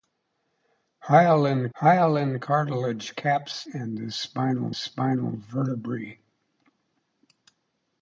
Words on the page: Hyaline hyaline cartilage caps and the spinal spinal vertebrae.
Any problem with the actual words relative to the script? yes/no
no